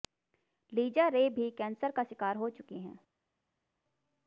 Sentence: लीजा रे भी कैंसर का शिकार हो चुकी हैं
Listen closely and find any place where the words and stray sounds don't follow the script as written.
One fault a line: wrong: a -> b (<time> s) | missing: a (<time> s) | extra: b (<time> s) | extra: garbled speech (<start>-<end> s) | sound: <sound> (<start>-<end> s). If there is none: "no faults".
no faults